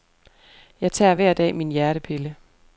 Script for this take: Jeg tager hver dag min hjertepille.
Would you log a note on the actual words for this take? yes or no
no